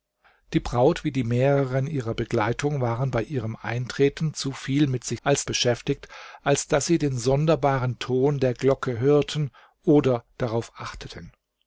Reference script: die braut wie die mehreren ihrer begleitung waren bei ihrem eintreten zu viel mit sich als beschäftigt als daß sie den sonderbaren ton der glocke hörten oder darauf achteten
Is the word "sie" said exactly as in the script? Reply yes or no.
yes